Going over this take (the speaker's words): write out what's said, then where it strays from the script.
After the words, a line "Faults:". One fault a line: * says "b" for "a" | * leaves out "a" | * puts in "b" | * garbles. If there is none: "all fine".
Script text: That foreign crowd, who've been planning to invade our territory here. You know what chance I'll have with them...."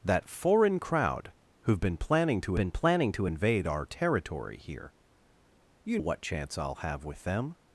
That foreign crowd, who've been planning to been planning to invade our territory here. You what chance I'll have with them...."
Faults:
* puts in "been planning to"
* leaves out "know"